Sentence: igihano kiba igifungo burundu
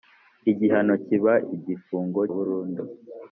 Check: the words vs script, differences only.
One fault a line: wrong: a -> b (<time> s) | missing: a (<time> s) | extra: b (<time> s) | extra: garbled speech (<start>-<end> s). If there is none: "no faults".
no faults